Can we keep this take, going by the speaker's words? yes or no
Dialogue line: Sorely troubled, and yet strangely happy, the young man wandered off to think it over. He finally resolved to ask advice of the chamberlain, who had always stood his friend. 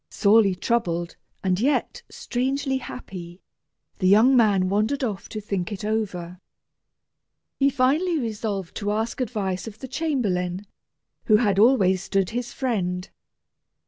yes